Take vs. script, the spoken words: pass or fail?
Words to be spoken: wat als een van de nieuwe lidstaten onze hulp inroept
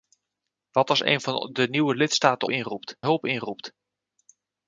fail